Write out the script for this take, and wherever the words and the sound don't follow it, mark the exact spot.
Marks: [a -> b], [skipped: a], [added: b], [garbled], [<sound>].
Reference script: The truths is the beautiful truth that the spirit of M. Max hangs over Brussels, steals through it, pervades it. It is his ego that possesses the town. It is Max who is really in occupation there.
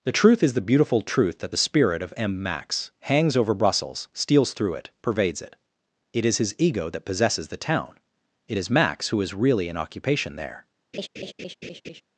The [truths -> truth] is the beautiful truth that the spirit of M. Max hangs over Brussels, steals through it, pervades it. It is his ego that possesses the town. It is Max who is really in occupation there. [laugh]